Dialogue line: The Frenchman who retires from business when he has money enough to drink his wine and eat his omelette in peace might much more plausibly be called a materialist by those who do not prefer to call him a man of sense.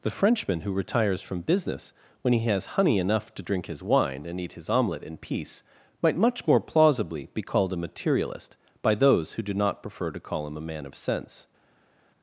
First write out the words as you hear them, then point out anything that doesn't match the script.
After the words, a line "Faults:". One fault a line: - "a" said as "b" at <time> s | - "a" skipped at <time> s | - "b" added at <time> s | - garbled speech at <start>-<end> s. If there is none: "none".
The Frenchman who retires from business when he has honey enough to drink his wine and eat his omelette in peace might much more plausibly be called a materialist by those who do not prefer to call him a man of sense.
Faults:
- "money" said as "honey" at 2.8 s